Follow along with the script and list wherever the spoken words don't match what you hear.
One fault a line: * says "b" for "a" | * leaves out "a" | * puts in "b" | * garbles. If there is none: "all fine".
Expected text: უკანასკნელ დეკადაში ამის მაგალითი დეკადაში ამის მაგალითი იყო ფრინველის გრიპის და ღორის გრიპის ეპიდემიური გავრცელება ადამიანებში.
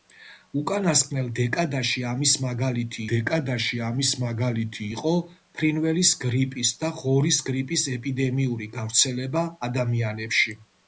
all fine